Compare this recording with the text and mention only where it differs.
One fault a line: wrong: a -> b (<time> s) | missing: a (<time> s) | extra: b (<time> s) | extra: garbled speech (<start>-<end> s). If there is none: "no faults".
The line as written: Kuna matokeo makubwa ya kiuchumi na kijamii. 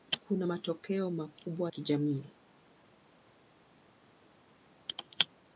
missing: ya kiuchumi na (1.7 s)